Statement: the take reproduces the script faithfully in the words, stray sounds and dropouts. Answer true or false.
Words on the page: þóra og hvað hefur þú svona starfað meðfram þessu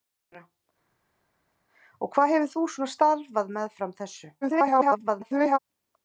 false